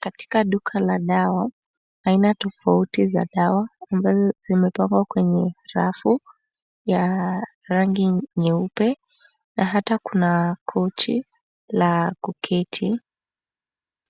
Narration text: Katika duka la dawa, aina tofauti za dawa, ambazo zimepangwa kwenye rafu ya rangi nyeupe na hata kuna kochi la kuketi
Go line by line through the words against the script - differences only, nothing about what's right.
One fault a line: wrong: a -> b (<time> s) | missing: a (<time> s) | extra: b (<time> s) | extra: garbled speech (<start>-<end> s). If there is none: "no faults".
no faults